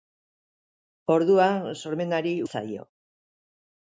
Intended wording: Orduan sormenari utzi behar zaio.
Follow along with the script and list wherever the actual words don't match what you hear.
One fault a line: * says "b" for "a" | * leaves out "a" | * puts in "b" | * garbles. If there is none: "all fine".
* leaves out "utzi behar"